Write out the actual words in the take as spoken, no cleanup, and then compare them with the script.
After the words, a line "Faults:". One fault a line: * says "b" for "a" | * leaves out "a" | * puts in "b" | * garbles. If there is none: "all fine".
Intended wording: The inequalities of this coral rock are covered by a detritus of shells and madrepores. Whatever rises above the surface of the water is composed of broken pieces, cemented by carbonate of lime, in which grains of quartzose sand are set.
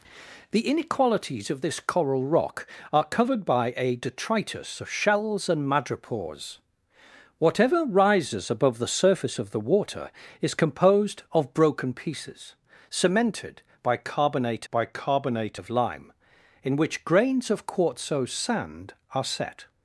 The inequalities of this coral rock are covered by a detritus of shells and madrepores. Whatever rises above the surface of the water is composed of broken pieces, cemented by carbonate by carbonate of lime, in which grains of quartzose sand are set.
Faults:
* puts in "by carbonate"